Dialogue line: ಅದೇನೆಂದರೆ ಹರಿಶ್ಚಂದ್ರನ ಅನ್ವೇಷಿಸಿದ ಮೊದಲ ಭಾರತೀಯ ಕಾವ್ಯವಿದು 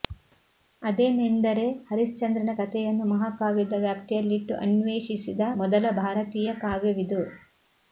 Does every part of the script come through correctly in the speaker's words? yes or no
no